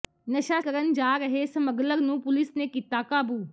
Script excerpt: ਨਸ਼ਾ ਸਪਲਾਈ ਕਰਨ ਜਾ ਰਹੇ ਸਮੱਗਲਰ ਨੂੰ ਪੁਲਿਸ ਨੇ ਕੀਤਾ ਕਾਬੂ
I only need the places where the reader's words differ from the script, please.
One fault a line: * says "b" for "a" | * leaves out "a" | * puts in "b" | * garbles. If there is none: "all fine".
* leaves out "ਸਪਲਾਈ"